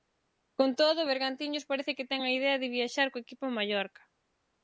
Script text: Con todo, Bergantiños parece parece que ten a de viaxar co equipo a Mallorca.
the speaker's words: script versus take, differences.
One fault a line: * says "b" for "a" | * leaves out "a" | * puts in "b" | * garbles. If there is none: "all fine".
* leaves out "parece"
* puts in "idea"